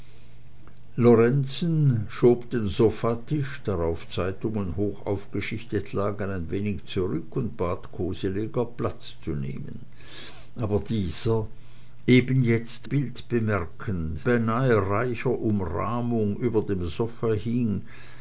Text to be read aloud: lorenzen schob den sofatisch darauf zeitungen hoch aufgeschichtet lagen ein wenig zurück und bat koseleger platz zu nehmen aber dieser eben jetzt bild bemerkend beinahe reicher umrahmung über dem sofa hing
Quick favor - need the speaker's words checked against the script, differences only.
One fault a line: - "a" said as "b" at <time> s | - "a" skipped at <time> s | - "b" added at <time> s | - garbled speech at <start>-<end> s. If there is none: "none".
none